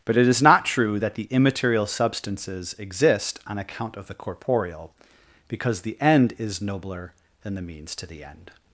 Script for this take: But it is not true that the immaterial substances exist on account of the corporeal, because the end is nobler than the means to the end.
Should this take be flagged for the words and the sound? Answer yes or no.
no